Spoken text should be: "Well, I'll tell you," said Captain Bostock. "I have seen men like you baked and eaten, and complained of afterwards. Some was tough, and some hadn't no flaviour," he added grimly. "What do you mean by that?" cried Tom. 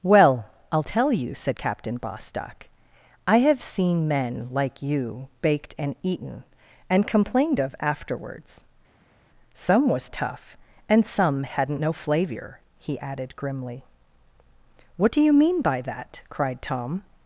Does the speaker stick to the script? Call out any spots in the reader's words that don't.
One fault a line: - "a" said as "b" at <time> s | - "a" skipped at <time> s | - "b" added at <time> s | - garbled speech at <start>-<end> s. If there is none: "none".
none